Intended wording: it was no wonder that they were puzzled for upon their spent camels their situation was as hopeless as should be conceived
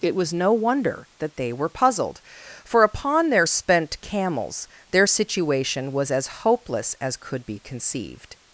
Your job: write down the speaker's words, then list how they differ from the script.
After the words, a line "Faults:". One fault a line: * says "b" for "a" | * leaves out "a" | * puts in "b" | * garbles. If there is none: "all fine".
it was no wonder that they were puzzled for upon their spent camels their situation was as hopeless as could be conceived
Faults:
* says "could" for "should"